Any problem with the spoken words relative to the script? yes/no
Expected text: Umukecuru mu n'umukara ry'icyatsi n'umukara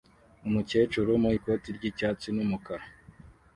yes